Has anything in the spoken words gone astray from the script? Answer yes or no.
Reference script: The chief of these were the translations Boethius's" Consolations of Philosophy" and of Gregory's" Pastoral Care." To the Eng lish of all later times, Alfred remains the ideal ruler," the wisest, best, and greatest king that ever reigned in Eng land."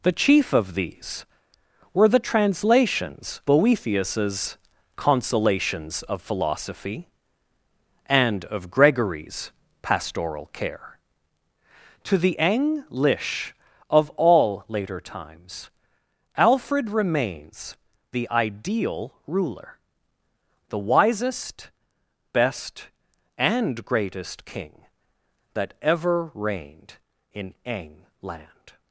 no